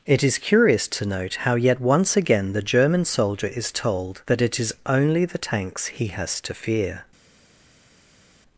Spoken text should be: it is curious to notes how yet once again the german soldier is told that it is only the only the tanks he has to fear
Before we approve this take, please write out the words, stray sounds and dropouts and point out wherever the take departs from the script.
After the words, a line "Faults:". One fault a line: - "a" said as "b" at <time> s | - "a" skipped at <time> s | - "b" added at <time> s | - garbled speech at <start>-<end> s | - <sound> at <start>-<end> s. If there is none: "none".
it is curious to note how yet once again the german soldier is told that it is only the tanks he has to fear
Faults:
- "notes" said as "note" at 1.1 s
- "only the" skipped at 5.4 s